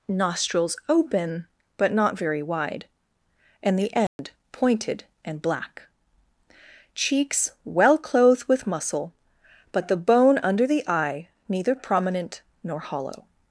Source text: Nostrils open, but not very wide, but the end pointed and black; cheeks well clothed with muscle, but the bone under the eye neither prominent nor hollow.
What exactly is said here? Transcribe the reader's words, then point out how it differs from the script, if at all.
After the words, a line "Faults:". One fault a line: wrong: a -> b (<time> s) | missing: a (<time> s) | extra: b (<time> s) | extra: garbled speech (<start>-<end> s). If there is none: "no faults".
Nostrils open, but not very wide, and the end pointed and black; cheeks well clothed with muscle, but the bone under the eye neither prominent nor hollow.
Faults:
wrong: but -> and (3.6 s)